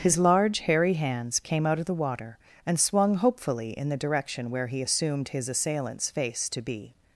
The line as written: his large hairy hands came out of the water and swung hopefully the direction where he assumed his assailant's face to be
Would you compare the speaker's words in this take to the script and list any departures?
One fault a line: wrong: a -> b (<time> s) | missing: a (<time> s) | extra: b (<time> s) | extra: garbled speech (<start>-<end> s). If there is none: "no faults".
extra: in (3.8 s)